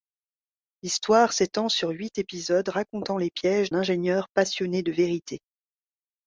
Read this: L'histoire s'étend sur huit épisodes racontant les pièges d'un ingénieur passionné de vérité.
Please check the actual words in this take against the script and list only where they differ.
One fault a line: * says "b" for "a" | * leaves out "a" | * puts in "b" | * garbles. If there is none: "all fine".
* leaves out "d'un"